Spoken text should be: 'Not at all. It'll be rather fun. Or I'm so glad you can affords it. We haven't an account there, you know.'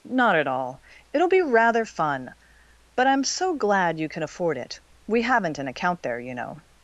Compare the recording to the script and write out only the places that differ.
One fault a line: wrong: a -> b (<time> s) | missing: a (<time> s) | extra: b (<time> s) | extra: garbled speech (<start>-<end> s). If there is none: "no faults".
wrong: Or -> But (3.0 s)
wrong: affords -> afford (4.2 s)